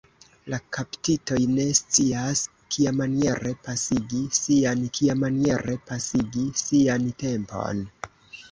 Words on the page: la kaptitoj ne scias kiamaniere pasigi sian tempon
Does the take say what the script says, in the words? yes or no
no